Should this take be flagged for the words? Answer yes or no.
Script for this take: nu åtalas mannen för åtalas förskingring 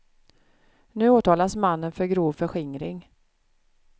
yes